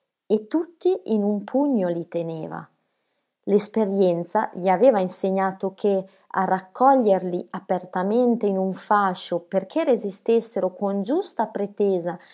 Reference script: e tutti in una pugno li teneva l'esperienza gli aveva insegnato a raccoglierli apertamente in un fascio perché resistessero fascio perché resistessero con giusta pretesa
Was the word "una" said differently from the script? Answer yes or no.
yes